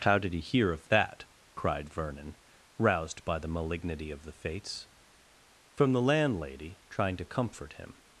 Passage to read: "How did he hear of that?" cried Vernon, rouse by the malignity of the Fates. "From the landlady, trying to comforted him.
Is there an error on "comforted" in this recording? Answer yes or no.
yes